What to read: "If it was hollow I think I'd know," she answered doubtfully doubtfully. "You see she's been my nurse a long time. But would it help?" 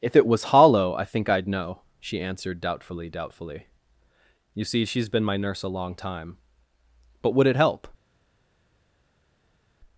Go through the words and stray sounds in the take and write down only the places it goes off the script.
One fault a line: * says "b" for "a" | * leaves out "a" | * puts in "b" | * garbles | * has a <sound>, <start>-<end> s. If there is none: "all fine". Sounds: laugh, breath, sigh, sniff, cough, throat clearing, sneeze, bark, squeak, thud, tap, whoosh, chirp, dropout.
all fine